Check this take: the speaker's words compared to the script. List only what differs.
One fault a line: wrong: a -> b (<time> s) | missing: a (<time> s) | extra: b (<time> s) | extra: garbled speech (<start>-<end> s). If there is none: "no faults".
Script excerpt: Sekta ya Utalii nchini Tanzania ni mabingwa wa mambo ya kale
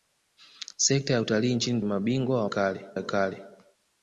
missing: Tanzania ni (1.8 s)
wrong: mambo -> kale (2.4 s)